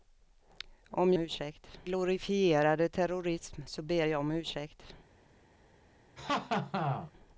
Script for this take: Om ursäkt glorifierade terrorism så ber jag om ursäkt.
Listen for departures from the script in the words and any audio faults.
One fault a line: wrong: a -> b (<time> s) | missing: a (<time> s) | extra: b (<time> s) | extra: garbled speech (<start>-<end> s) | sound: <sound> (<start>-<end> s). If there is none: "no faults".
sound: laugh (6.2-7.1 s)